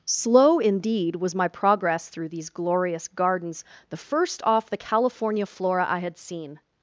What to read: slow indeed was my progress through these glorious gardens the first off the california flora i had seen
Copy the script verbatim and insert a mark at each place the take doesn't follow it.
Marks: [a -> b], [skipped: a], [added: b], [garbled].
slow indeed was my progress through these glorious gardens the first off the california flora i had seen